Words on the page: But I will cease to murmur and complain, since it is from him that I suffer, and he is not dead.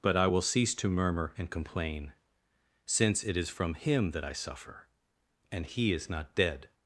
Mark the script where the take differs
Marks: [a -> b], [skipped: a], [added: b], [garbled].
But I will cease to murmur and complain, since it is from him that I suffer, and he is not dead.